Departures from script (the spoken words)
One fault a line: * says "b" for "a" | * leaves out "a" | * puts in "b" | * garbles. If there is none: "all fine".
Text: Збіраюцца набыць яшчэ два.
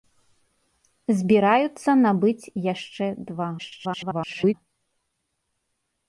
* garbles